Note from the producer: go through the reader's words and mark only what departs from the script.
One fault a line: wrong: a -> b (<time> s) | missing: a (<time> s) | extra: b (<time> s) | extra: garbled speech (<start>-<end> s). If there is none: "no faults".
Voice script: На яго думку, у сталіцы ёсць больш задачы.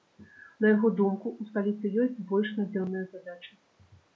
extra: надзённыя (2.6 s)